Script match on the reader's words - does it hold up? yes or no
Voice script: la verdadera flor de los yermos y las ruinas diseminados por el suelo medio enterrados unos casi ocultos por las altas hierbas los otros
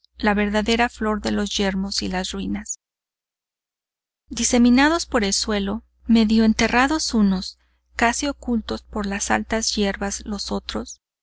yes